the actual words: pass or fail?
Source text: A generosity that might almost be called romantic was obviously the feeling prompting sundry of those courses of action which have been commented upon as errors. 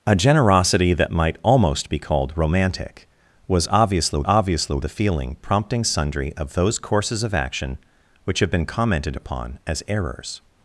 fail